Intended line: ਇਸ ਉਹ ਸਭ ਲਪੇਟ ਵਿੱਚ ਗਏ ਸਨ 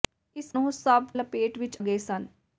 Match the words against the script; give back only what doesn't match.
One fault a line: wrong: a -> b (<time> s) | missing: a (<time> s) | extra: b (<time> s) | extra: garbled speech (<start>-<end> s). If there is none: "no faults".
no faults